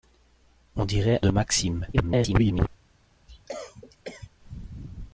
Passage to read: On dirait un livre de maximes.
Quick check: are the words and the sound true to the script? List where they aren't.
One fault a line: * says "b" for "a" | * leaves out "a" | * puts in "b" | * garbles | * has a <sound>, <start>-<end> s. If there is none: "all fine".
* leaves out "un livre"
* garbles
* has a cough, 3.3-4.3 s